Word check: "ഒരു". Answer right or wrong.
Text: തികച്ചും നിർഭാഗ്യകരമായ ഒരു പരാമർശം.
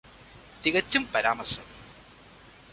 wrong